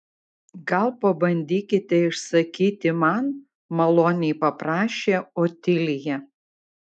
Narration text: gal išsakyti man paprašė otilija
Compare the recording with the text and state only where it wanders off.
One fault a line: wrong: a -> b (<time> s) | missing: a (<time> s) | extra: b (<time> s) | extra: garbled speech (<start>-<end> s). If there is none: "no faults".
extra: pabandykite (1.0 s)
extra: maloniai (3.8 s)